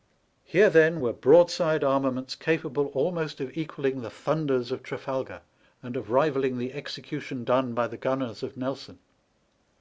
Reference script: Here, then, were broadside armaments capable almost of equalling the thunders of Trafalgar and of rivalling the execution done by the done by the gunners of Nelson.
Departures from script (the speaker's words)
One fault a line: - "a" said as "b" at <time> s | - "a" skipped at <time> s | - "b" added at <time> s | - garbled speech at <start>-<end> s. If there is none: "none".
- "done by the" skipped at 8.0 s